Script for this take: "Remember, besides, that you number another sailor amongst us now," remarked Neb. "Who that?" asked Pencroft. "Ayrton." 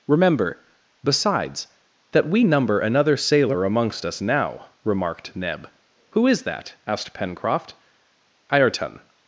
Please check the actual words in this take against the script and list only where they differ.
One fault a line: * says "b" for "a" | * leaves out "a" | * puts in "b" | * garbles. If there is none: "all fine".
* says "we" for "you"
* puts in "is"